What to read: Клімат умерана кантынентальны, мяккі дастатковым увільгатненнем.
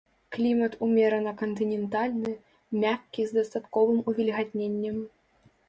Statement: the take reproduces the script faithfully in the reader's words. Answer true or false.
false